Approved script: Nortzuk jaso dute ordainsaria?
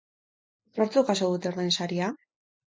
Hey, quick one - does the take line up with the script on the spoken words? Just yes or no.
yes